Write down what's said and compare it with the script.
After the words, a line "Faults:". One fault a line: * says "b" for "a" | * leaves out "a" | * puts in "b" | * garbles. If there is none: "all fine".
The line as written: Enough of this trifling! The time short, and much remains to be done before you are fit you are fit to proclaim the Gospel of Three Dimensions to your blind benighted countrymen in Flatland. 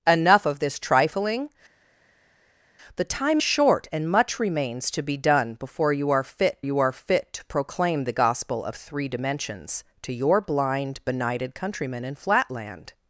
Enough of this trifling! The time short, and much remains to be done before you are fit you are fit to proclaim the Gospel of Three Dimensions to your blind benighted countrymen in Flatland.
Faults:
all fine